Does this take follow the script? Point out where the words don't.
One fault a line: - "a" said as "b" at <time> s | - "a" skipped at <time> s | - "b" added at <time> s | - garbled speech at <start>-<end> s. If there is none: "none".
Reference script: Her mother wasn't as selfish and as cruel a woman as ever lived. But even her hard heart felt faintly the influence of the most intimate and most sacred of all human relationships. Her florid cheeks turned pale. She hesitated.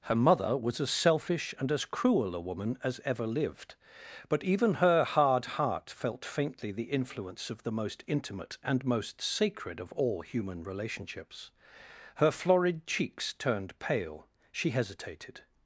- "wasn't" said as "was" at 0.6 s